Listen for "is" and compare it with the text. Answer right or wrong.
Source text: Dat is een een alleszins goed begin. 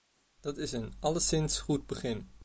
right